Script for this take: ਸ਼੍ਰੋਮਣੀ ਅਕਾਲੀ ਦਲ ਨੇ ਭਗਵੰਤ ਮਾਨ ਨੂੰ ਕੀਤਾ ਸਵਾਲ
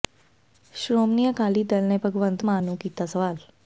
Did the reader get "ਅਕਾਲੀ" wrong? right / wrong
right